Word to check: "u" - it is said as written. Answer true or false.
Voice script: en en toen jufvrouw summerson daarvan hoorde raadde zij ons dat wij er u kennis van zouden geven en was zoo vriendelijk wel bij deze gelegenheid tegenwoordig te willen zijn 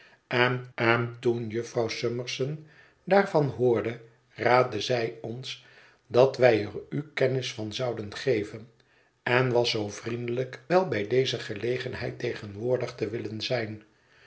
true